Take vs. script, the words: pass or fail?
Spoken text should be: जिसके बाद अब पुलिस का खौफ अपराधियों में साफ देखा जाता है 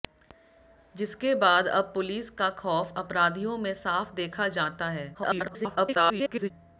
fail